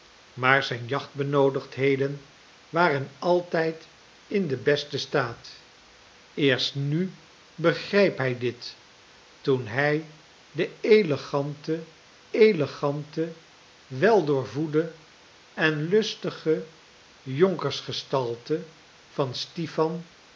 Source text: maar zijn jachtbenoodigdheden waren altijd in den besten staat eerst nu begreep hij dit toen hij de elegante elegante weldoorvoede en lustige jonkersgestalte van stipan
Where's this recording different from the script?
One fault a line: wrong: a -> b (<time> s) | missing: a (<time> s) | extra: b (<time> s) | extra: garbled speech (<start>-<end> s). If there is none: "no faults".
no faults